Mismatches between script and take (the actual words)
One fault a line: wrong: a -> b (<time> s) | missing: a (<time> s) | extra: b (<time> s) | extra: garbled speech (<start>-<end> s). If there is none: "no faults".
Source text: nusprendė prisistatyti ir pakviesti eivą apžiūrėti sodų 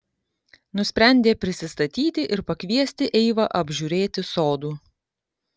no faults